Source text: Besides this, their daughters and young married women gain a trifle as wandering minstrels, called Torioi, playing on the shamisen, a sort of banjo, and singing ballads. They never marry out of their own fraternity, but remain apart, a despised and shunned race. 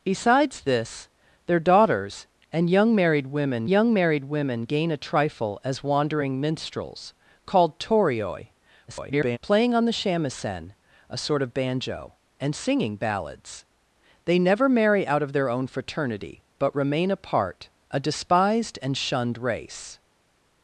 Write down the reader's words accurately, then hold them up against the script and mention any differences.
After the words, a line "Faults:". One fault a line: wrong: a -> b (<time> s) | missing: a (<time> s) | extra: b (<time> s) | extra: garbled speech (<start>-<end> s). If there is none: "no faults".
Besides this, their daughters and young married women young married women gain a trifle as wandering minstrels, called Torioi, [garbled] playing on the shamisen, a sort of banjo, and singing ballads. They never marry out of their own fraternity, but remain apart, a despised and shunned race.
Faults:
extra: young married women (3.7 s)
extra: garbled speech (8.9-9.4 s)